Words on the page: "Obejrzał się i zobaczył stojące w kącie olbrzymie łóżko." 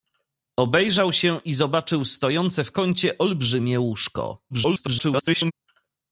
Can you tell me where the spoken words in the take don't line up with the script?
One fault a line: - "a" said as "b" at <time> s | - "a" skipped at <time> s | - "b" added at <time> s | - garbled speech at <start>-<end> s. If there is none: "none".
- garbled speech at 4.5-5.5 s